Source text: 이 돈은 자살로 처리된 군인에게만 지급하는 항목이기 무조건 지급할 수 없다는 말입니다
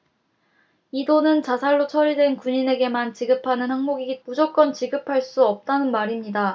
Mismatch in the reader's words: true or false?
false